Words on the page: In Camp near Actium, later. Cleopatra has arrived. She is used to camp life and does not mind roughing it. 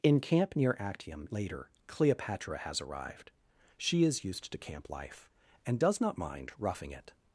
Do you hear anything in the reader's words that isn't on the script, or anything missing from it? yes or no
no